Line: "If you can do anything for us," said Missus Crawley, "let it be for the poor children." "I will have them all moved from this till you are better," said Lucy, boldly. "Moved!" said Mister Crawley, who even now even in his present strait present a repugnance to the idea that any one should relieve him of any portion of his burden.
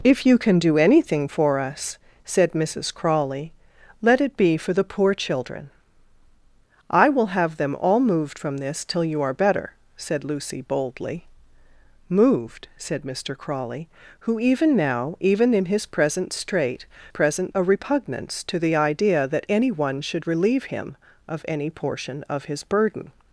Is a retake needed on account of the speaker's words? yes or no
no